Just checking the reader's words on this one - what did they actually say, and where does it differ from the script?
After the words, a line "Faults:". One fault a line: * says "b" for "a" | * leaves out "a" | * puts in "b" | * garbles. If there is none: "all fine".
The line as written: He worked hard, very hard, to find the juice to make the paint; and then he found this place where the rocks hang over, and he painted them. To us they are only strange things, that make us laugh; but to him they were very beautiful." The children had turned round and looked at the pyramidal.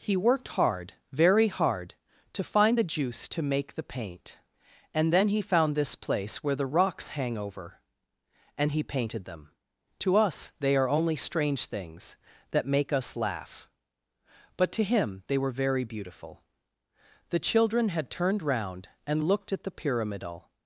He worked hard, very hard, to find the juice to make the paint; and then he found this place where the rocks hang over, and he painted them. To us they are only strange things, that make us laugh; but to him they were very beautiful." The children had turned round and looked at the pyramidal.
Faults:
all fine